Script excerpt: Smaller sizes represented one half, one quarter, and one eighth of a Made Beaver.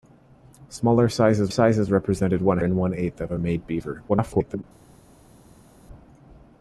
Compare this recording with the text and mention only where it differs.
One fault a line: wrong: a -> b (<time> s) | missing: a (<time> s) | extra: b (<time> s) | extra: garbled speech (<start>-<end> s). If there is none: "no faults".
extra: sizes (1.5 s)
missing: half one quarter (2.6 s)
extra: garbled speech (4.1-4.6 s)